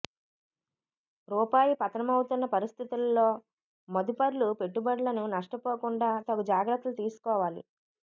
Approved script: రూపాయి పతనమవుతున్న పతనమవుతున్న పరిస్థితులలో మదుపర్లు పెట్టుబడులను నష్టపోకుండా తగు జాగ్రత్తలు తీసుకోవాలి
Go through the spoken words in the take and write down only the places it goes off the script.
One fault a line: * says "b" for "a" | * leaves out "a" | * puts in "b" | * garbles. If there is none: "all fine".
* leaves out "పతనమవుతున్న"